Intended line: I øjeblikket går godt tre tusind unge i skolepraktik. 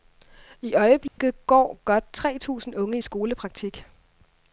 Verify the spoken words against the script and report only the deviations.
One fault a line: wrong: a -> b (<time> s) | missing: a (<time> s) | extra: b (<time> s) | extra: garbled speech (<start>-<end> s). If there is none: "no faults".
no faults